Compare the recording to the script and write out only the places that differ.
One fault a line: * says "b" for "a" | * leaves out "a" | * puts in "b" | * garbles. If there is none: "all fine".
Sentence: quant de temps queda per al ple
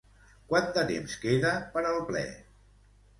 all fine